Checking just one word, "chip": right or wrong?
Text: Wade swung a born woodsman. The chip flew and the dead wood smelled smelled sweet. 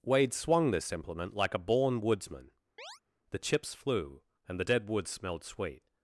wrong